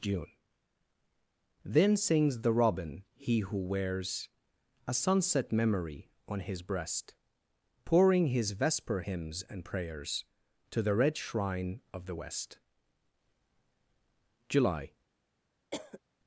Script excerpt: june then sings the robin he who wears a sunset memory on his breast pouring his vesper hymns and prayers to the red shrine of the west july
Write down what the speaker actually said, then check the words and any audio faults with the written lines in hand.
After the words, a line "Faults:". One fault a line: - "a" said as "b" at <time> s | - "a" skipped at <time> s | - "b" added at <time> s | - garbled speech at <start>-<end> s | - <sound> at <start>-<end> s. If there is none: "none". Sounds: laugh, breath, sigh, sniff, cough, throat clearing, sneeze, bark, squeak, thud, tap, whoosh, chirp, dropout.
june then sings the robin he who wears a sunset memory on his breast pouring his vesper hymns and prayers to the red shrine of the west july
Faults:
- cough at 15.7-16.0 s